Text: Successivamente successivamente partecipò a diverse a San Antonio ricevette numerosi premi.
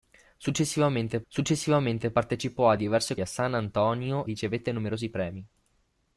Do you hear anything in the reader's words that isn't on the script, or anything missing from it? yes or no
no